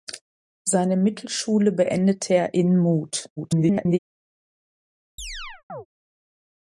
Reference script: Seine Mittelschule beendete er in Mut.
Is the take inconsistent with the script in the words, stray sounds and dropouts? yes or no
yes